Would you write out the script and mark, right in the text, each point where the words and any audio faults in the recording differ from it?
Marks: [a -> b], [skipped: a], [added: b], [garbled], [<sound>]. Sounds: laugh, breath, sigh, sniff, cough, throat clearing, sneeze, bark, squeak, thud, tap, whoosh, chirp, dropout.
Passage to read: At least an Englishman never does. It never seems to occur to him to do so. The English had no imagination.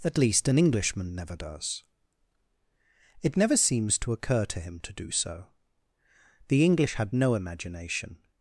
At least an Englishman never does. It never seems to occur to him to do so. The English had no imagination.